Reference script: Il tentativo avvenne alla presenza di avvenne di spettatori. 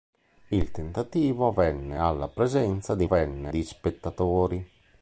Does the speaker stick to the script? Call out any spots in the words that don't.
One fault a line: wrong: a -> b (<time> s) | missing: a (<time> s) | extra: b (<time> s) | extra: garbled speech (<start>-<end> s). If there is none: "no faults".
no faults